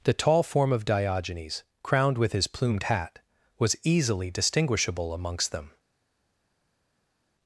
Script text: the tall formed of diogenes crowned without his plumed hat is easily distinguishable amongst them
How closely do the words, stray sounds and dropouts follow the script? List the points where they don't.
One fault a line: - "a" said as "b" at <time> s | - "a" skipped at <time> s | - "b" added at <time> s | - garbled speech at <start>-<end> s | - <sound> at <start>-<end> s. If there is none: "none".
- "formed" said as "form" at 0.4 s
- "without" said as "with" at 2.2 s
- "is" said as "was" at 3.6 s